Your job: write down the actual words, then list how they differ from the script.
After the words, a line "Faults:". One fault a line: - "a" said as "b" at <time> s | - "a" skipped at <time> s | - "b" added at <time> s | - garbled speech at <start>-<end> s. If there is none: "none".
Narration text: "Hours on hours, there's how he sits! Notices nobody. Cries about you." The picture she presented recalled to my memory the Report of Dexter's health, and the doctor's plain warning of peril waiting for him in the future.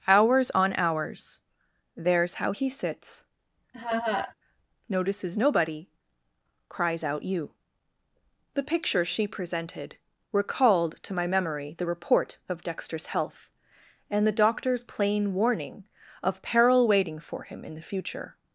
"Hours on hours, there's how he sits! Notices nobody. Cries out you." The picture she presented recalled to my memory the Report of Dexter's health, and the doctor's plain warning of peril waiting for him in the future.
Faults:
- "about" said as "out" at 7.0 s